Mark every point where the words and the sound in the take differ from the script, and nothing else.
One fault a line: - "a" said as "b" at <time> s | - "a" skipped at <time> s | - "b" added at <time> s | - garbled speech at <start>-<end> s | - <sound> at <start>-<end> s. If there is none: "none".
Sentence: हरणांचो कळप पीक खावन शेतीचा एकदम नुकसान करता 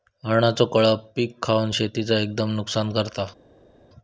none